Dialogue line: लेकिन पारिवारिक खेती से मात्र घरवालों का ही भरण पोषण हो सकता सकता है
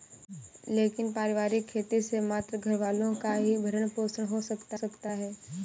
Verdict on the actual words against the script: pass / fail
pass